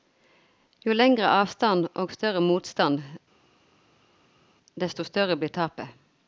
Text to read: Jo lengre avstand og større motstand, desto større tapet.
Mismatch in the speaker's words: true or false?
true